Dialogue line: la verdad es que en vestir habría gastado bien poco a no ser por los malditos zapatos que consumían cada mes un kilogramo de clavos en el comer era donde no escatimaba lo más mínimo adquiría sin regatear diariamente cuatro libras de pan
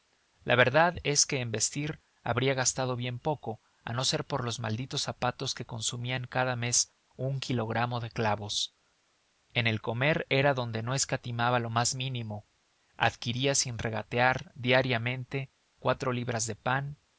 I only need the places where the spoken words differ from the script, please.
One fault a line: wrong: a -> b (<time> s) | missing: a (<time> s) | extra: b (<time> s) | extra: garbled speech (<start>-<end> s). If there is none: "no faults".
no faults